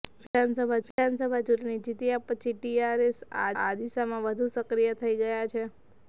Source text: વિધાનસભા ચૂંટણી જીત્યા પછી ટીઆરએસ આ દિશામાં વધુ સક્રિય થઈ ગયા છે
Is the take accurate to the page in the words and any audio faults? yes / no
no